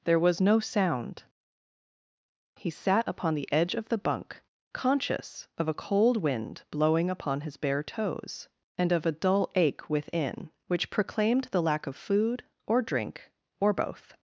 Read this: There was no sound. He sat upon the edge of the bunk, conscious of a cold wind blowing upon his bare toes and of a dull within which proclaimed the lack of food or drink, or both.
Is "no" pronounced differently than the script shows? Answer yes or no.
no